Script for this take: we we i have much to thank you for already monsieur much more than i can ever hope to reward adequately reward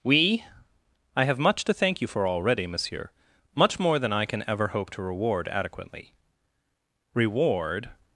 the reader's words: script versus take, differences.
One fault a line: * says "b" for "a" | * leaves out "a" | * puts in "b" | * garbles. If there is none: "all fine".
* leaves out "we"